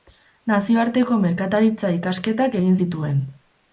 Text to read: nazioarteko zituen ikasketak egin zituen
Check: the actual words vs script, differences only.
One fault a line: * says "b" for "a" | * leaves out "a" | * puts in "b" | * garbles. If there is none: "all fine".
* says "merkataritza" for "zituen"